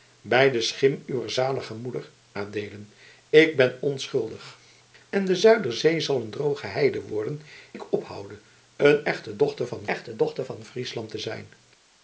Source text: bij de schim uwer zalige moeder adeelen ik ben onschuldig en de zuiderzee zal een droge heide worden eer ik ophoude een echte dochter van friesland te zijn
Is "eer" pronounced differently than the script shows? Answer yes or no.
yes